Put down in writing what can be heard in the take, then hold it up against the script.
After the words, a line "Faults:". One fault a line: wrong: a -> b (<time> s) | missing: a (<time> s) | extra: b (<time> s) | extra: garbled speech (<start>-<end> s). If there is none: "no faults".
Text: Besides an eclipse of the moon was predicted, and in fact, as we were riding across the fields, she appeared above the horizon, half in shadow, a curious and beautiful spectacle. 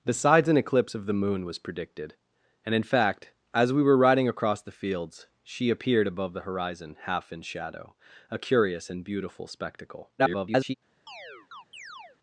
Besides an eclipse of the moon was predicted, and in fact, as we were riding across the fields, she appeared above the horizon, half in shadow, a curious and beautiful spectacle. [garbled]
Faults:
extra: garbled speech (10.2-10.7 s)